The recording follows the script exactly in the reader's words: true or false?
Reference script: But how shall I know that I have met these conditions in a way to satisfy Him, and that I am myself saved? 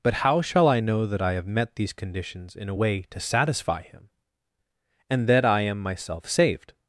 true